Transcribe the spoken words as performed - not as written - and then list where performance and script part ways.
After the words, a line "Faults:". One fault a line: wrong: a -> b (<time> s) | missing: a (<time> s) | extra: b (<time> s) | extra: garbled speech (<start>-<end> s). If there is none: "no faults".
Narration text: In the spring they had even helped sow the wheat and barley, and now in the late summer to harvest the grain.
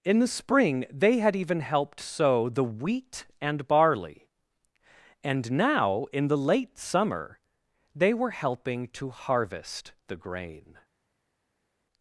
In the spring they had even helped sow the wheat and barley, and now in the late summer they were helping to harvest the grain.
Faults:
extra: they were helping (7.9 s)